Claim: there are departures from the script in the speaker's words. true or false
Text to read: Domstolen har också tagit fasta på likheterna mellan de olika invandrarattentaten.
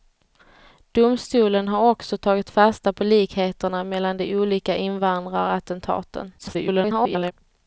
true